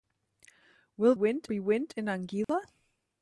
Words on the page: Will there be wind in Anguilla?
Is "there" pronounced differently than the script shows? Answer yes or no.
yes